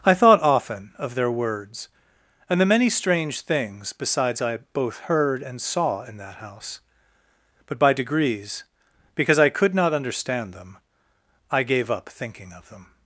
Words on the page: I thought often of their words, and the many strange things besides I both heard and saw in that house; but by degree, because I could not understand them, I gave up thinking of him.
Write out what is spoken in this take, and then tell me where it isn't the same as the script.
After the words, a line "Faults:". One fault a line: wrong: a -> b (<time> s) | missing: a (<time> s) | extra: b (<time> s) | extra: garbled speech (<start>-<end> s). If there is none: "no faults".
I thought often of their words, and the many strange things besides I both heard and saw in that house; but by degrees, because I could not understand them, I gave up thinking of them.
Faults:
wrong: degree -> degrees (7.9 s)
wrong: him -> them (12.7 s)